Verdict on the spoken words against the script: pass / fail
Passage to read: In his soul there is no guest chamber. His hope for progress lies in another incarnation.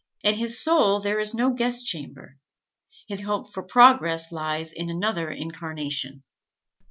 pass